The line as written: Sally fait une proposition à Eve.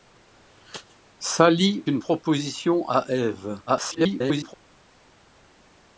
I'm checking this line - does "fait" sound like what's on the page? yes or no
no